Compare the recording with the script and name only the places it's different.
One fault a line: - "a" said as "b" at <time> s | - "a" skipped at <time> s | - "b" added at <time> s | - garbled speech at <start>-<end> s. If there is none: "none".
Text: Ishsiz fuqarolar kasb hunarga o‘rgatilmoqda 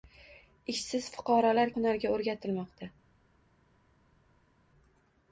- "kasb" skipped at 1.7 s